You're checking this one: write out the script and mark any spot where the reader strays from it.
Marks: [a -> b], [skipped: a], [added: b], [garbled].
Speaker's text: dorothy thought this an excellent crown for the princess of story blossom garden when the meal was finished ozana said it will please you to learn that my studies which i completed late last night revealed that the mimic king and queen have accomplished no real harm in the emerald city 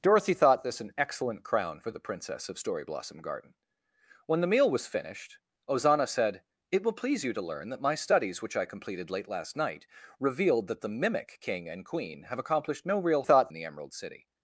dorothy thought this an excellent crown for the princess of story blossom garden when the meal was finished ozana said it will please you to learn that my studies which i completed late last night revealed that the mimic king and queen have accomplished no real [harm -> thought] in the emerald city